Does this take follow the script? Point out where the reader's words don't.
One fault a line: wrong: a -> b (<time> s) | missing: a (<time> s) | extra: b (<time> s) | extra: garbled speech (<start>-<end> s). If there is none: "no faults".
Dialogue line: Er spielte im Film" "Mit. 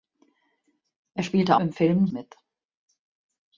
no faults